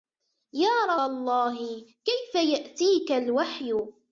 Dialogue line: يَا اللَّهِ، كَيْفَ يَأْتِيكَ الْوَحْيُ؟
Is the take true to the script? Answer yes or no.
yes